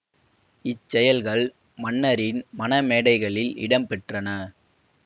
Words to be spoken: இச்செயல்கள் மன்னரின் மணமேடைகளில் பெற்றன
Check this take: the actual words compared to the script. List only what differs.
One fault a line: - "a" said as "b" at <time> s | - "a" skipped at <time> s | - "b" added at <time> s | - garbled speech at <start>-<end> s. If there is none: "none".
- "இடம்" added at 3.6 s